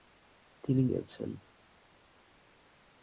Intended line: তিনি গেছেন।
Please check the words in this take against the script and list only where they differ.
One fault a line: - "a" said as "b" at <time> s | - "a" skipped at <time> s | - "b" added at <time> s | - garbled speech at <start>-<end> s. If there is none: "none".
none